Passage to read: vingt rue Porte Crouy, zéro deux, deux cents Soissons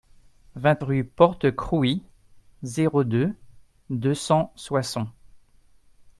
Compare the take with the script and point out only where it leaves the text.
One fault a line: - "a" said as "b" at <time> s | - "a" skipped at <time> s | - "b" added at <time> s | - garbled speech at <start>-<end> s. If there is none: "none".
none